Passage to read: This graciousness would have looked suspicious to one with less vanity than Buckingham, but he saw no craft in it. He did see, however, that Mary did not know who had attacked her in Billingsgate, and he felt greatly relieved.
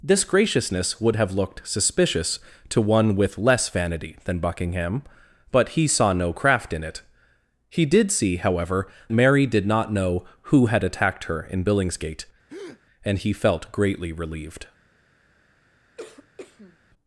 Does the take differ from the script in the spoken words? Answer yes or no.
yes